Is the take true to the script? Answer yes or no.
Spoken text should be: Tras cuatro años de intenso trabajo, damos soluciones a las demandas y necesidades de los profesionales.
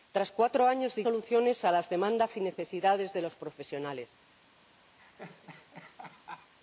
no